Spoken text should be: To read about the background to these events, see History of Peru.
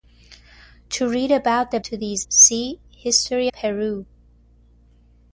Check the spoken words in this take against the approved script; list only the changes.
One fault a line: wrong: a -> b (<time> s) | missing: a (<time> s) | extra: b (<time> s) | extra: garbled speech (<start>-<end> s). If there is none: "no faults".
missing: background (1.8 s)
missing: events (2.3 s)
missing: of (3.5 s)